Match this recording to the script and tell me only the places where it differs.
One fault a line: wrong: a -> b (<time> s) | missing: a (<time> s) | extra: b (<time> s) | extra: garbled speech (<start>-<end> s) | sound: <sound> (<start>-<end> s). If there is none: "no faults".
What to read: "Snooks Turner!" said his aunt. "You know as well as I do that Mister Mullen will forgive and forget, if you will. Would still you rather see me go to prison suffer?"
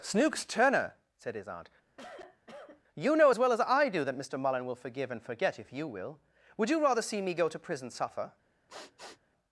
sound: cough (1.9-2.8 s)
missing: still (6.7 s)
sound: sniff (8.7-9.2 s)